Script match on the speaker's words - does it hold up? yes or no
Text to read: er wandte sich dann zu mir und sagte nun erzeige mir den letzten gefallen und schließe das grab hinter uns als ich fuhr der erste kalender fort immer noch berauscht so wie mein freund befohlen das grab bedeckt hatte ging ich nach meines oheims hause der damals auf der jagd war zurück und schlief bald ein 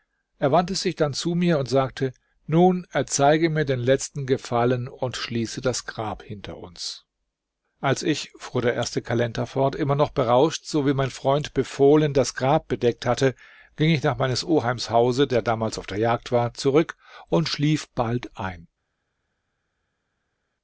yes